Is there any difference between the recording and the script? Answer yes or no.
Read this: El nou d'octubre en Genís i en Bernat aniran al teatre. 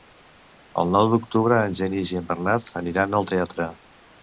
no